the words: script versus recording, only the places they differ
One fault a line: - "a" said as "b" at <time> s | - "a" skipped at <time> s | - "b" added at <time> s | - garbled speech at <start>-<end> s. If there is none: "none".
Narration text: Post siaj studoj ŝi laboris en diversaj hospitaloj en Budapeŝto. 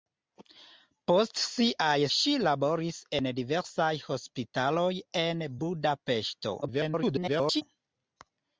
- "studoj" skipped at 2.0 s
- garbled speech at 6.6-7.6 s